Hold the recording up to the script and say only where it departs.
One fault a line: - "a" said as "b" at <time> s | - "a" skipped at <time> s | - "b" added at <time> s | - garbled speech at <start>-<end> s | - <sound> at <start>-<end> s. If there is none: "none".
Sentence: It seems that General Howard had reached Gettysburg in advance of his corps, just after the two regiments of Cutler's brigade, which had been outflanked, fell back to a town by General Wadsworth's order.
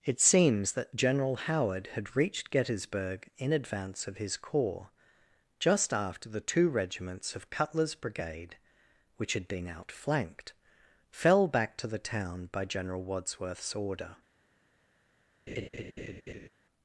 - "a" said as "the" at 11.9 s
- laugh at 15.5-16.5 s